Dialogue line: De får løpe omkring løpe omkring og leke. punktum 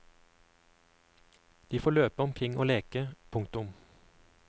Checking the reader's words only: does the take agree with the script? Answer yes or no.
no